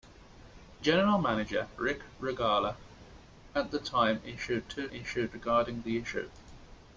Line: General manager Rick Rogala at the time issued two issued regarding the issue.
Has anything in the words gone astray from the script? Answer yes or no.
no